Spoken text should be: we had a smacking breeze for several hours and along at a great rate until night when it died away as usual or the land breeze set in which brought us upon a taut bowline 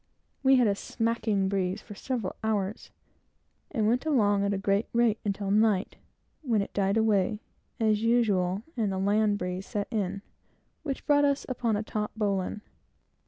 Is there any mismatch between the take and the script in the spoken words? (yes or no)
yes